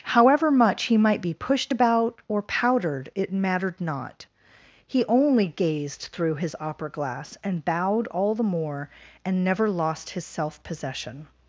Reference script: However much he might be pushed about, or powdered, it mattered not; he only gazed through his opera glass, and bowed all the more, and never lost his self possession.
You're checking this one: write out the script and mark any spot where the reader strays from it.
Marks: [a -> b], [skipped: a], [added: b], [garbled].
However much he might be pushed about, or powdered, it mattered not; he only gazed through his opera glass, and bowed all the more, and never lost his self possession.